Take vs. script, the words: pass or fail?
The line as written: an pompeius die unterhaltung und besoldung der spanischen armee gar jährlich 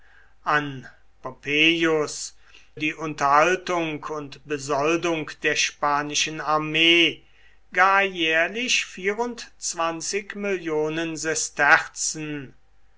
pass